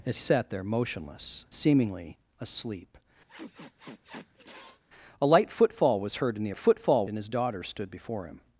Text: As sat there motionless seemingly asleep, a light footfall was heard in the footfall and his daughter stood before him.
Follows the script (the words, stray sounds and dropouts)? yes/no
no